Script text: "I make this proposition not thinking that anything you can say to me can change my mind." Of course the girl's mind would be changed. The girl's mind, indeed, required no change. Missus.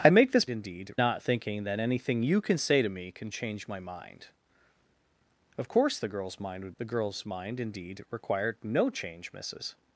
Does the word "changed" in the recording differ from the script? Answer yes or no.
yes